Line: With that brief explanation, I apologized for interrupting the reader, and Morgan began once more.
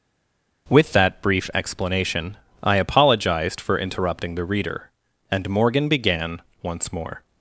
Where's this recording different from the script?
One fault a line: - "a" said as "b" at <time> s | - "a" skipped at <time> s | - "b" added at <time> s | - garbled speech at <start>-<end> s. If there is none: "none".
none